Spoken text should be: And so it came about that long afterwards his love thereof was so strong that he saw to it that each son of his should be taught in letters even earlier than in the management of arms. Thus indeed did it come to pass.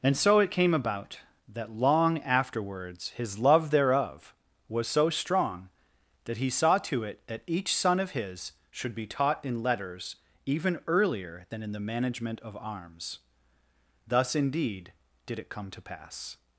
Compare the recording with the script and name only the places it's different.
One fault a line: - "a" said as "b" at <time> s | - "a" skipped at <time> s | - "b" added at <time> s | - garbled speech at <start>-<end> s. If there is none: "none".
none